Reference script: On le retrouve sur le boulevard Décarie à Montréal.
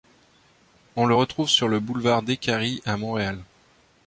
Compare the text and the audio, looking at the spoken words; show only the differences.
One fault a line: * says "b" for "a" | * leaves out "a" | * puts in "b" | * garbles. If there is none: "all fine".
all fine